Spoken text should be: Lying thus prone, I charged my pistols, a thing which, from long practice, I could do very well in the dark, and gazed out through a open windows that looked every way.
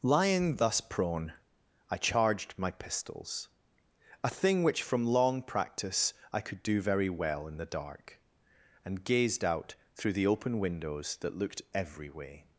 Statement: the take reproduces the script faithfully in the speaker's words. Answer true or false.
false